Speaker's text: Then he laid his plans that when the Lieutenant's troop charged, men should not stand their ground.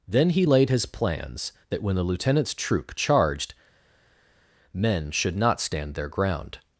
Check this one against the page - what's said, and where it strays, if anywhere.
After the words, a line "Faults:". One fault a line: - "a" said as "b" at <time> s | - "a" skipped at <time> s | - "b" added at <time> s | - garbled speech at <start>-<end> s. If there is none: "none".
Then he laid his plans that when the Lieutenant's troop charged, men should not stand their ground.
Faults:
none